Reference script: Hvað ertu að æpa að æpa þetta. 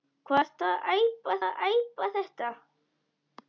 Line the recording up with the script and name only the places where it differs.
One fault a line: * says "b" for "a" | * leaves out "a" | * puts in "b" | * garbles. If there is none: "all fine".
all fine